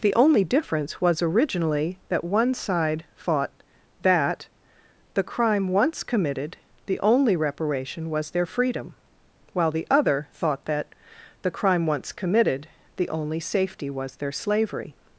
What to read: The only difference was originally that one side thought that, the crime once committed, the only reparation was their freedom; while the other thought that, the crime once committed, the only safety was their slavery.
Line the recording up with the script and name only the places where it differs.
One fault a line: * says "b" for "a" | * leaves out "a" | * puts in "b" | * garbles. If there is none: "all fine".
all fine